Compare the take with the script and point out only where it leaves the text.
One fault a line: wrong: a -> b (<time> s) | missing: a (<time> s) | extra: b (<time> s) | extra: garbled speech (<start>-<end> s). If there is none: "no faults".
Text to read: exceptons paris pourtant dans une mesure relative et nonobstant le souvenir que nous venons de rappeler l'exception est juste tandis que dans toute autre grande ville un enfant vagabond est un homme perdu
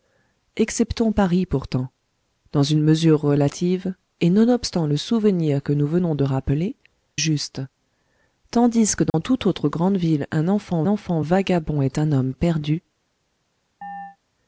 missing: l'exception est (6.8 s)
extra: enfant (10.9 s)